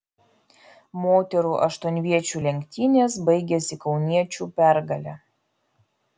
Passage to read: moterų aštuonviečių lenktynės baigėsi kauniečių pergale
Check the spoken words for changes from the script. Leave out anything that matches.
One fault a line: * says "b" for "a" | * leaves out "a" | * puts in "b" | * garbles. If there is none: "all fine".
all fine